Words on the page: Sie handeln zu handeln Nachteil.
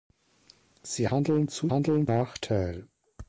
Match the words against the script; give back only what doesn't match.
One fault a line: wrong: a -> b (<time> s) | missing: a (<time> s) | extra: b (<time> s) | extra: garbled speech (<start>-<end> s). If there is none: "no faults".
no faults